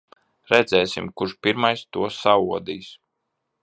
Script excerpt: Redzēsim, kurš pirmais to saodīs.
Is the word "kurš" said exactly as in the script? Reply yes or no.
yes